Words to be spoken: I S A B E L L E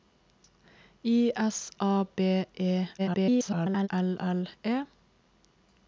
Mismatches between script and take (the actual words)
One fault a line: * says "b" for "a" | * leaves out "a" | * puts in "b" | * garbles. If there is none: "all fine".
* garbles